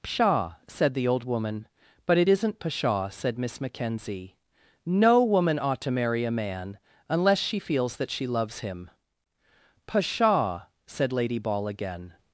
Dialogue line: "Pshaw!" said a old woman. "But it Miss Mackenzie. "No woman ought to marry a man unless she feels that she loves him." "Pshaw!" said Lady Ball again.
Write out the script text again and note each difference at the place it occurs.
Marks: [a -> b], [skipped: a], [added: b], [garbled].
"Pshaw!" said [a -> the] old woman. "But it [added: isn't pshaw said] Miss Mackenzie. "No woman ought to marry a man unless she feels that she loves him." "Pshaw!" said Lady Ball again.